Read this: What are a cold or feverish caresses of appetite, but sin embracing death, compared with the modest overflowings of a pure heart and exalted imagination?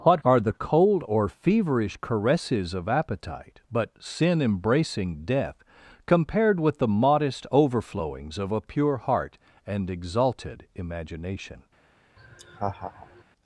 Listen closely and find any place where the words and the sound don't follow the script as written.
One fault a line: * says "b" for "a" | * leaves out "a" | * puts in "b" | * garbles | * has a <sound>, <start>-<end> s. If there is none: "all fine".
* says "the" for "a"
* has a laugh, 12.2-13.2 s